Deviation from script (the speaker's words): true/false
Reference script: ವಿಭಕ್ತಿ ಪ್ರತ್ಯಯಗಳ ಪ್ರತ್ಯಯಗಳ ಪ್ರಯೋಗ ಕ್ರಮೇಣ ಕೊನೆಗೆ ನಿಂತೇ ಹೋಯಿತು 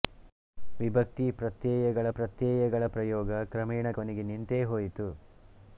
false